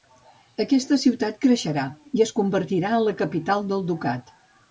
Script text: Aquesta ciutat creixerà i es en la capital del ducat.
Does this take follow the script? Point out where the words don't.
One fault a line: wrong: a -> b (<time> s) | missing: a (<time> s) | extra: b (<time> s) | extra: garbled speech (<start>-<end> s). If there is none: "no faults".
extra: convertirà (2.4 s)